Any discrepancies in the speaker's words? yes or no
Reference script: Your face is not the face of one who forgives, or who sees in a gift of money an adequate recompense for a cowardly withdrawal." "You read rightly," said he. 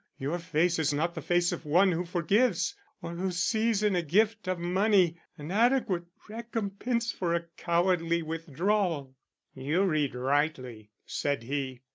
no